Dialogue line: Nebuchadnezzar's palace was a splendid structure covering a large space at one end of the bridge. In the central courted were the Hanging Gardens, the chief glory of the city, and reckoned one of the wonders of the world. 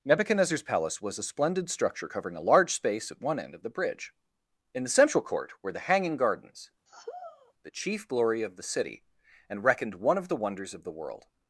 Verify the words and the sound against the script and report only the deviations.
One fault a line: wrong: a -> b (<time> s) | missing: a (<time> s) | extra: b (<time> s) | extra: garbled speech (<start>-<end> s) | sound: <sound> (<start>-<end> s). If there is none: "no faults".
wrong: courted -> court (5.2 s)
sound: sigh (6.9-7.5 s)